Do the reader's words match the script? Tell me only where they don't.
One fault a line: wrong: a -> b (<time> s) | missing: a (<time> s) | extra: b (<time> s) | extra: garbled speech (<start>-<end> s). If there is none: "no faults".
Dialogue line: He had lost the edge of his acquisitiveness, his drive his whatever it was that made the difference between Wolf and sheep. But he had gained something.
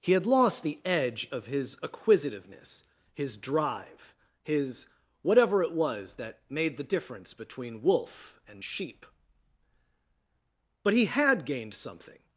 no faults